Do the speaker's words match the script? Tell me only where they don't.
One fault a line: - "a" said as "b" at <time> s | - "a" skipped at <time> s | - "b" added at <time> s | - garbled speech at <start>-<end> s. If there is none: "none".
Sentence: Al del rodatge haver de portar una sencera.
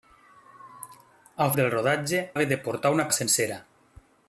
none